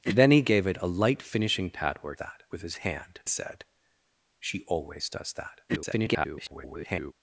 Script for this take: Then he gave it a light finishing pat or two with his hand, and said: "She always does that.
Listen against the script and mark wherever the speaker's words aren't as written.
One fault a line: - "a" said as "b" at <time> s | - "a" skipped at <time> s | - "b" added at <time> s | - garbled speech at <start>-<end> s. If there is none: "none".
- "two" said as "that" at 2.1 s
- "and" skipped at 3.2 s
- garbled speech at 5.7-7.1 s